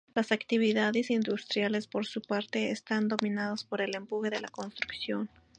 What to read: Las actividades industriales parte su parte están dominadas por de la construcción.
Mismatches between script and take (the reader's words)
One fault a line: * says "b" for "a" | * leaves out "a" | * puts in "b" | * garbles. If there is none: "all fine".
* says "por" for "parte"
* puts in "el empuje"